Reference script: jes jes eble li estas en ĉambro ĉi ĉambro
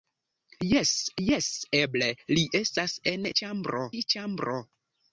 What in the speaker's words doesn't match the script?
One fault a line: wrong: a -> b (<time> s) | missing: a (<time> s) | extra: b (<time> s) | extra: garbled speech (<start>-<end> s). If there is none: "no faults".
no faults